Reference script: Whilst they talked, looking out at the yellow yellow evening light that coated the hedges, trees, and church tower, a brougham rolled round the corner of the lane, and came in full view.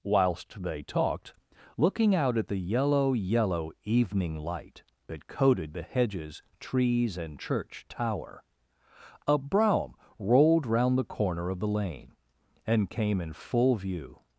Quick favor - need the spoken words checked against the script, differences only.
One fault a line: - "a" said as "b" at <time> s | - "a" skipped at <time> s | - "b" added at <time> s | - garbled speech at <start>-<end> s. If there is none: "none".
none